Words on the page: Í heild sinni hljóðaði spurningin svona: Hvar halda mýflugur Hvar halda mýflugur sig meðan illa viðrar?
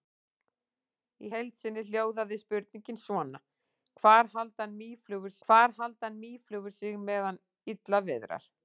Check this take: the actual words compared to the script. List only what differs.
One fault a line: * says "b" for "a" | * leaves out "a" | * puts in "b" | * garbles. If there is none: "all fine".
all fine